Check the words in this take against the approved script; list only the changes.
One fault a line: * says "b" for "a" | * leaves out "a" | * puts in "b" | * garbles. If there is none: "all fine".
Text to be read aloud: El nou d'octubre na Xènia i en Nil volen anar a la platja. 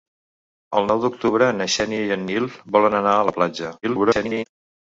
* garbles